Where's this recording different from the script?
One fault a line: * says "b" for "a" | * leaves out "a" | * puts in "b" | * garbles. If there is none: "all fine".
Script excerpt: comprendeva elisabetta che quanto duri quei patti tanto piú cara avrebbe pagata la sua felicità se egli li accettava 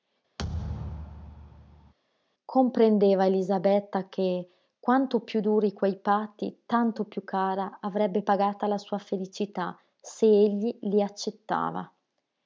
* puts in "piú"